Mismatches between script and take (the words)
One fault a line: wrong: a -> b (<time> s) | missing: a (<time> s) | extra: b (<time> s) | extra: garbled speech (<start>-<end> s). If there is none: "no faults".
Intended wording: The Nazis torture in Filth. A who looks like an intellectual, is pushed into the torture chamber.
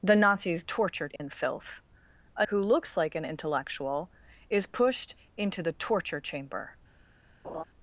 no faults